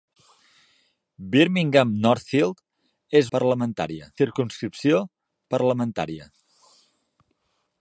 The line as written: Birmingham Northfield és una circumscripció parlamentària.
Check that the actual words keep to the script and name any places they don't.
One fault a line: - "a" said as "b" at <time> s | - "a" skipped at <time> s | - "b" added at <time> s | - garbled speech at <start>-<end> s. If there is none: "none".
- "una" said as "parlamentària" at 3.4 s